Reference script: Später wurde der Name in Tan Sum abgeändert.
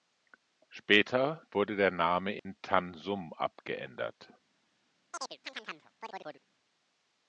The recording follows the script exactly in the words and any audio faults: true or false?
false